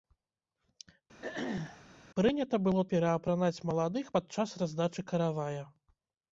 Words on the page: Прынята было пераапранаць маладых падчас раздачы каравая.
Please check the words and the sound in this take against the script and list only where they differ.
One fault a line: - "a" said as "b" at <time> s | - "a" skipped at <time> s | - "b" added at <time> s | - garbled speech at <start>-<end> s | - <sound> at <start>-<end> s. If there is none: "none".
- throat clearing at 1.2-1.8 s